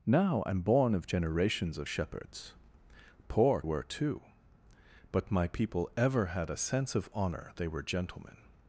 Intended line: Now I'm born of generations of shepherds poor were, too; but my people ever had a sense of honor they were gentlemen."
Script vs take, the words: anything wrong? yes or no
no